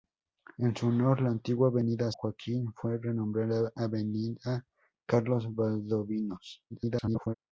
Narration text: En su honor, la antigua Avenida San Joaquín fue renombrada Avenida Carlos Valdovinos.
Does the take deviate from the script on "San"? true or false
true